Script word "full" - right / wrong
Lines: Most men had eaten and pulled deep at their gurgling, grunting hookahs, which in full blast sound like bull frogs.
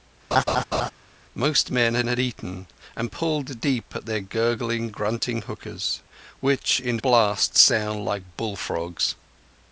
wrong